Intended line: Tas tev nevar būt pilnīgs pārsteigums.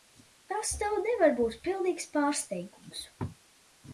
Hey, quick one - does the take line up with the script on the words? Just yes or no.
yes